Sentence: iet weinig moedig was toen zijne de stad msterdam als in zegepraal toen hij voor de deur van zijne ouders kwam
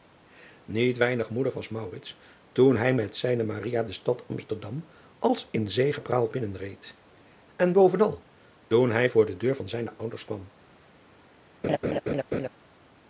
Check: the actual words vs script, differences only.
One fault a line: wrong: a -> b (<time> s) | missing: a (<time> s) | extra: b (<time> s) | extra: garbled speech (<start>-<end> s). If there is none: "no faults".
extra: hij met (2.8 s)
extra: binnenreed en bovenal (6.3 s)